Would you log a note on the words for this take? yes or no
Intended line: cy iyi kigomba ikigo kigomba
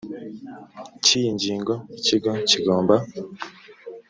yes